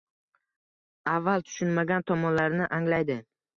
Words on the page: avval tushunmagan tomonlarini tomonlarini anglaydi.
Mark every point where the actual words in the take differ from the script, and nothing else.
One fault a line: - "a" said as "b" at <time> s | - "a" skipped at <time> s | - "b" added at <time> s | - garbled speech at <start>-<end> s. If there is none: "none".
- "tomonlarini" skipped at 2.7 s